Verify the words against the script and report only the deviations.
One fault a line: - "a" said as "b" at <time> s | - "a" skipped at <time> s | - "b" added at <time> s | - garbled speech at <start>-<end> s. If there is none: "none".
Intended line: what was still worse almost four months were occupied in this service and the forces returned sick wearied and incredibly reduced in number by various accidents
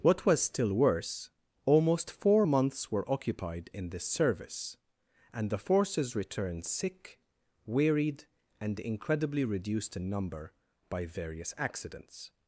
none